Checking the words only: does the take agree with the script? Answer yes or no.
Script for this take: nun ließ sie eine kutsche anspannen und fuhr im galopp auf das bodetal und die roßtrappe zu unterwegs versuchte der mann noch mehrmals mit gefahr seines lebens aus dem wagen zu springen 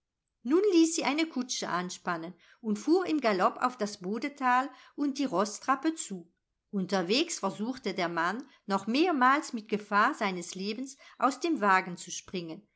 yes